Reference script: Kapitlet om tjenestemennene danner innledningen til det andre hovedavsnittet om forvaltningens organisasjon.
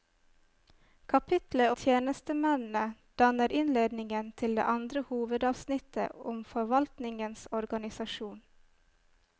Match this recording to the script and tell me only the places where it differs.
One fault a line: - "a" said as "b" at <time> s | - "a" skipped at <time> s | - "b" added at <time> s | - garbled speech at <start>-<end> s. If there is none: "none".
- "om" skipped at 1.7 s